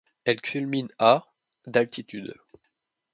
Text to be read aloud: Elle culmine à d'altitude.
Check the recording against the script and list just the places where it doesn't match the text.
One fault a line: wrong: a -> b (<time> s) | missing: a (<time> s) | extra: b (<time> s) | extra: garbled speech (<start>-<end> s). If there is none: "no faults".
no faults